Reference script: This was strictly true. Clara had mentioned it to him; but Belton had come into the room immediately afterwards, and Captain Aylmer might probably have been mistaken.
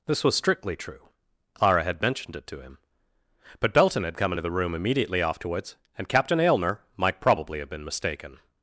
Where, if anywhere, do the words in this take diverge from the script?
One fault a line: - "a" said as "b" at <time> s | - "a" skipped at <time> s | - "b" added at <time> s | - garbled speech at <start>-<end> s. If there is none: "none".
none